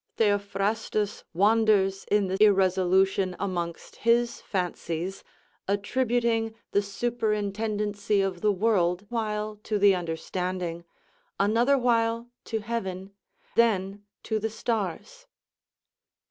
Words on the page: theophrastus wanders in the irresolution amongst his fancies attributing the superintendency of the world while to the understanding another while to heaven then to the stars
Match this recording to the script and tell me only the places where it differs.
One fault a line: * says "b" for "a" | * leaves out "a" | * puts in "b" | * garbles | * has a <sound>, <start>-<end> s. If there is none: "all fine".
all fine